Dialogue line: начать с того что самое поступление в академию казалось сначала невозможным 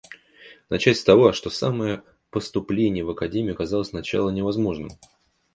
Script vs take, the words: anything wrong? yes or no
no